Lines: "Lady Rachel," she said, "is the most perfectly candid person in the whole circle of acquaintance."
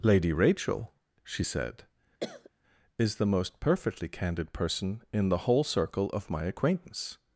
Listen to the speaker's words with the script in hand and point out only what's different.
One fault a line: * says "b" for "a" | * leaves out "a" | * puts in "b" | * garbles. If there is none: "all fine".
* puts in "my"